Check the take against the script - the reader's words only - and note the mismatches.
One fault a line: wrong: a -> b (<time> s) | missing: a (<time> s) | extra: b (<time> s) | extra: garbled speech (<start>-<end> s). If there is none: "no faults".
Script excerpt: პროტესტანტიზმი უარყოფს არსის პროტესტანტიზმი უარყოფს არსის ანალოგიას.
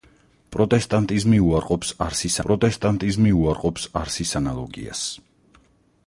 no faults